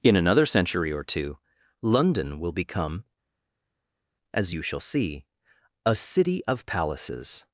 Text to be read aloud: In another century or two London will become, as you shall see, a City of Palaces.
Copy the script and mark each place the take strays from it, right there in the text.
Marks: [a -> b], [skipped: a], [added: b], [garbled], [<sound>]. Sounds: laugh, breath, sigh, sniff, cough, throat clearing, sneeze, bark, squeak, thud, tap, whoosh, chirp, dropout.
In another century or two London will become, as you shall see, a City of Palaces.